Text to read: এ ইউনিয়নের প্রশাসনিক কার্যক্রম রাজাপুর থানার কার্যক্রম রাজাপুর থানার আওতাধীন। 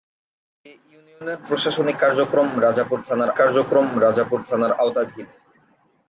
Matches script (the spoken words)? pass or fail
pass